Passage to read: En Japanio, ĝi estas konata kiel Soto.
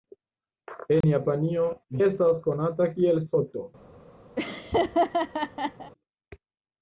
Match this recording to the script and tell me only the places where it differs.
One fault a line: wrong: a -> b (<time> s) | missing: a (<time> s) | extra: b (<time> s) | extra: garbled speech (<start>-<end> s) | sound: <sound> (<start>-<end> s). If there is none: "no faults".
sound: dropout (1.0-1.0 s)
missing: ĝi (1.7 s)
sound: laugh (4.4-5.9 s)